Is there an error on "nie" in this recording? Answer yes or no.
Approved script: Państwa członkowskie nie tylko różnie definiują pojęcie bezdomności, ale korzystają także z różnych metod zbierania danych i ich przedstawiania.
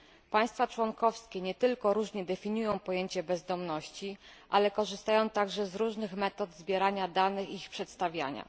no